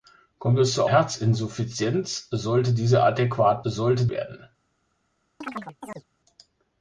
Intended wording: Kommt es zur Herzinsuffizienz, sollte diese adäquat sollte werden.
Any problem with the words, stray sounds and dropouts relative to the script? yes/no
yes